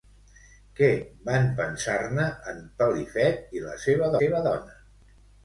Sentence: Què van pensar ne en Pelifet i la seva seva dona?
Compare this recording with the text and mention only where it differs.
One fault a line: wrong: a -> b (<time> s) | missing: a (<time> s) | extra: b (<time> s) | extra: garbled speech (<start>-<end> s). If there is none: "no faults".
no faults